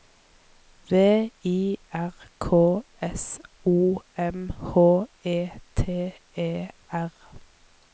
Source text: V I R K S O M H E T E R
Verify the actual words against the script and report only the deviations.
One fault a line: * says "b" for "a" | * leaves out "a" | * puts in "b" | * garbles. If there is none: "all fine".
all fine